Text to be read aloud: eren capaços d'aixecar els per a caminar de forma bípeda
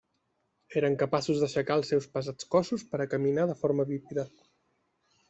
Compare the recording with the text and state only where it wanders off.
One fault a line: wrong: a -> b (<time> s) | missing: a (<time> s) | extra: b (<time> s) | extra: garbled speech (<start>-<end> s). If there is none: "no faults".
extra: seus pesats cossos (1.9 s)